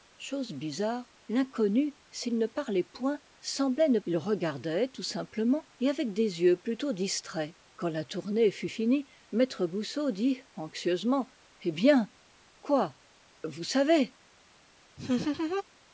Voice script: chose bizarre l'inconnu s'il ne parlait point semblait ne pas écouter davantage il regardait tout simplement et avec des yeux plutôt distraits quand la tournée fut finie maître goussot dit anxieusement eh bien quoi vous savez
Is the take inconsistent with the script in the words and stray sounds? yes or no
yes